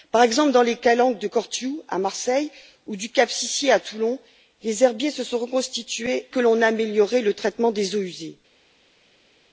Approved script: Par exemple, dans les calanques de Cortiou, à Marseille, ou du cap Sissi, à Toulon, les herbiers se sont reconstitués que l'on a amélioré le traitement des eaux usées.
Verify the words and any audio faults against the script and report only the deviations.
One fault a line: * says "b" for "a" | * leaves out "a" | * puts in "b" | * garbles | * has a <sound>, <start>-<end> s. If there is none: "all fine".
all fine